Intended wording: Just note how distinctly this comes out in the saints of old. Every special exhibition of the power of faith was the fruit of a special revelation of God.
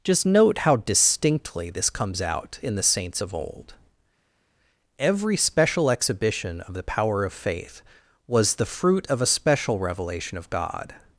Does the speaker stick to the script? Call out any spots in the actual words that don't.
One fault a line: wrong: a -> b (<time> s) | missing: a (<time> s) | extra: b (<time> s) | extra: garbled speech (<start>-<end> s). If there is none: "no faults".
no faults